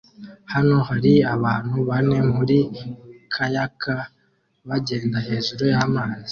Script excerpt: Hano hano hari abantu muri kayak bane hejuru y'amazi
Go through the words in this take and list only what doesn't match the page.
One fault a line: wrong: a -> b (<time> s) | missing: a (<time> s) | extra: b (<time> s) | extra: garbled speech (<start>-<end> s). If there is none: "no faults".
missing: hano (0.8 s)
extra: bane (1.9 s)
wrong: bane -> bagenda (4.7 s)